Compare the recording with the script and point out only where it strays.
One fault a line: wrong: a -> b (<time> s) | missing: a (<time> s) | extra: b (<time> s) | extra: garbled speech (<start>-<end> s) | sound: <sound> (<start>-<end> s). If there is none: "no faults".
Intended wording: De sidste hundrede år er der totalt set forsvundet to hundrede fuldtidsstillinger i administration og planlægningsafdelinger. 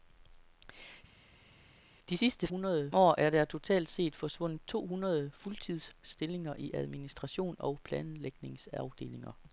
no faults